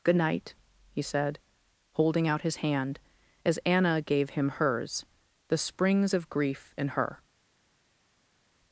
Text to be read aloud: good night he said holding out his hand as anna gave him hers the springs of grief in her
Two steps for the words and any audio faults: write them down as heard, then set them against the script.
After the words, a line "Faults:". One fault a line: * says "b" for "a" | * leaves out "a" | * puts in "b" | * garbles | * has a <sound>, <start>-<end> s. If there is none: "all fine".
good night he said holding out his hand as anna gave him hers the springs of grief in her
Faults:
all fine